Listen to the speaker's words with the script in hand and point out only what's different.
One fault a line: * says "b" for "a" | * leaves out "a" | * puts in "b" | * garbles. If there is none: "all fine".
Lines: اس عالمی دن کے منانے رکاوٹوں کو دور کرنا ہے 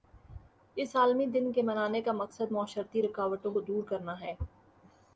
* puts in "کا مقصد معاشرتی"